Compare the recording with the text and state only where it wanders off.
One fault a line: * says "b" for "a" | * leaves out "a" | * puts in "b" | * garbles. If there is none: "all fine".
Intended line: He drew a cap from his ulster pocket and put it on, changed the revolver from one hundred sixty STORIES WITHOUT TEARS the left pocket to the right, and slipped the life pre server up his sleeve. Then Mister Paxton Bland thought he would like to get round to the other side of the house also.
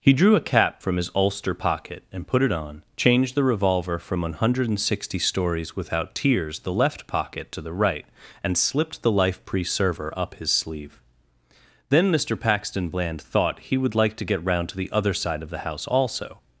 all fine